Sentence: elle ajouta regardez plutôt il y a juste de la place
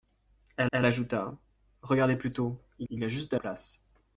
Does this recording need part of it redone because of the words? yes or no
yes